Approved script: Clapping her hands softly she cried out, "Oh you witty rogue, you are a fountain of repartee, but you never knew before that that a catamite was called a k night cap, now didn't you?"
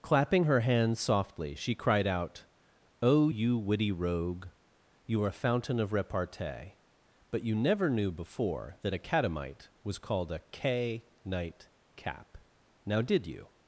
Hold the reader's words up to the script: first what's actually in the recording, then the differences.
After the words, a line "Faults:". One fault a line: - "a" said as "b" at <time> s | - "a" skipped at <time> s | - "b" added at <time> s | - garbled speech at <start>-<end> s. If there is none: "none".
Clapping her hands softly she cried out, "Oh you witty rogue, you are a fountain of repartee, but you never knew before that a catamite was called a k night cap, now did you?"
Faults:
- "that" skipped at 8.9 s
- "didn't" said as "did" at 13.0 s